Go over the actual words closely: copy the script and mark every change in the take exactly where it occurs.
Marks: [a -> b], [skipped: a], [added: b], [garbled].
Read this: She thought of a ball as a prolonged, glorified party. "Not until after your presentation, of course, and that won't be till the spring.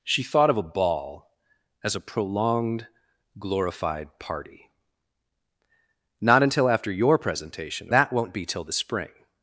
She thought of a ball as a prolonged, glorified party. "Not until after your presentation, [skipped: of course, and] that won't be till the spring.